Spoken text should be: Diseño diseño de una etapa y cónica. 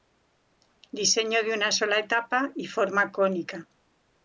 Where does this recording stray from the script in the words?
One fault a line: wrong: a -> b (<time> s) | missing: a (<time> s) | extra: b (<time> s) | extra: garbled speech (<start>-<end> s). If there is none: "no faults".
missing: diseño (1.4 s)
extra: sola (1.7 s)
extra: forma (2.6 s)